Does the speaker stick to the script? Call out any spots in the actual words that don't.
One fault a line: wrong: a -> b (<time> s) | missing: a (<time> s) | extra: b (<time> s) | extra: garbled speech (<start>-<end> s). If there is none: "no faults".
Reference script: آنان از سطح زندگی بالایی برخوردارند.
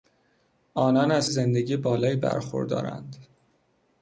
missing: سطح (1.2 s)